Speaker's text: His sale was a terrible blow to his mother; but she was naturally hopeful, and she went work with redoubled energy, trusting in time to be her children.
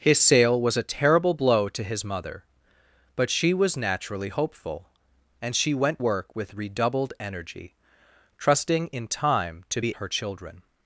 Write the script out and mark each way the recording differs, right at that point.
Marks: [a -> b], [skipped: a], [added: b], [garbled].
His sale was a terrible blow to his mother; but she was naturally hopeful, and she went work with redoubled energy, trusting in time to be her children.